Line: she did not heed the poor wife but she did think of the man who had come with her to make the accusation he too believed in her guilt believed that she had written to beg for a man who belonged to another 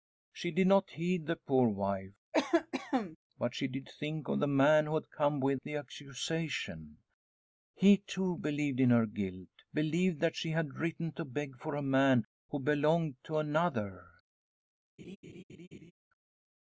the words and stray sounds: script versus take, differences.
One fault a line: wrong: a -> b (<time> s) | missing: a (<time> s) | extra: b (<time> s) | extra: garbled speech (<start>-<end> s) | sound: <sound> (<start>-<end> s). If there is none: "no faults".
sound: cough (2.3-3.2 s)
missing: her to make (5.6 s)
sound: laugh (15.0-15.9 s)